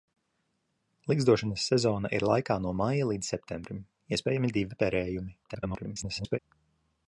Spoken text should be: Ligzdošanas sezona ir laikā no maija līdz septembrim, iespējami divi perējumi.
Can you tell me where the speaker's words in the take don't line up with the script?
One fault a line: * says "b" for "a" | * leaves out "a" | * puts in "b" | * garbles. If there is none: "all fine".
* garbles